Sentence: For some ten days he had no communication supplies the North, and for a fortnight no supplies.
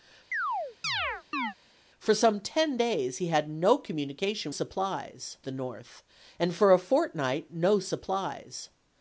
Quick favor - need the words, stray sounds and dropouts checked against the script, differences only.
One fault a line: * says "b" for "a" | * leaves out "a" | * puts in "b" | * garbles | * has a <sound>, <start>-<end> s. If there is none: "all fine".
* has a chirp, 0.3-1.5 s